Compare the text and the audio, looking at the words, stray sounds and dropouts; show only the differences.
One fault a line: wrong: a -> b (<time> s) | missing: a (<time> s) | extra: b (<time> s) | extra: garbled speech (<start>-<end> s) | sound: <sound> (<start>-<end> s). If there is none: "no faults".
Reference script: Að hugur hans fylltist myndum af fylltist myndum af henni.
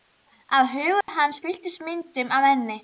sound: dropout (1.0-1.1 s)
missing: fylltist myndum af (2.5 s)